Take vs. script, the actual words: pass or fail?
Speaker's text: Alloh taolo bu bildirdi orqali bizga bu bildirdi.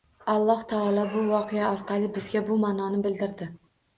fail